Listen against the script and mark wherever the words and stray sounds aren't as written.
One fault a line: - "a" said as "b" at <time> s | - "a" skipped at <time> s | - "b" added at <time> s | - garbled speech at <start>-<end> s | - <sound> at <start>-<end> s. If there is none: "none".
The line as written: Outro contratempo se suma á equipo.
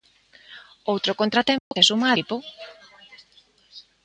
- dropout at 1.6-1.7 s